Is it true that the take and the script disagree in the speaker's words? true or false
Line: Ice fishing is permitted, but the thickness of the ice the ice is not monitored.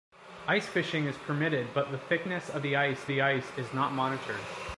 false